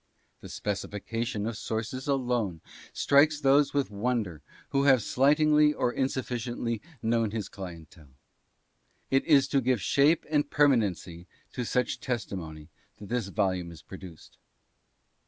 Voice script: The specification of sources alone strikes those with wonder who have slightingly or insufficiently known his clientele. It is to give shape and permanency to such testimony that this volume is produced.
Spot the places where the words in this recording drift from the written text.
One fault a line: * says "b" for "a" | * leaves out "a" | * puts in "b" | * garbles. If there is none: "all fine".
all fine